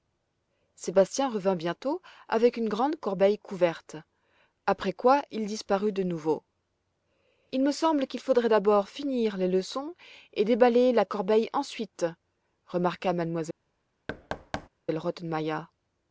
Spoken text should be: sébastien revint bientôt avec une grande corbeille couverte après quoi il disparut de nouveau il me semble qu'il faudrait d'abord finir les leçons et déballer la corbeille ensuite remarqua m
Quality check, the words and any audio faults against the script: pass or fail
fail